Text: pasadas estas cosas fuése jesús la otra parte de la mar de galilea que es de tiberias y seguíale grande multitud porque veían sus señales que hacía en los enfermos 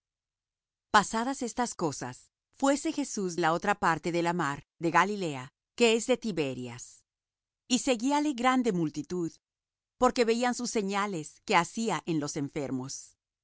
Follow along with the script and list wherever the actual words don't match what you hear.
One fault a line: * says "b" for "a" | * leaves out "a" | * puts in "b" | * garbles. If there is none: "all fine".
all fine